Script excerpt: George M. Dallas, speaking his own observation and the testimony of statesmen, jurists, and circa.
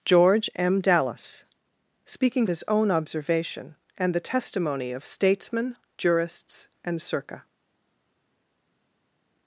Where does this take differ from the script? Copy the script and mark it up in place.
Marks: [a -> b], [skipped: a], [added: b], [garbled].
George M. Dallas, speaking his own observation and the testimony of statesmen, jurists, and circa.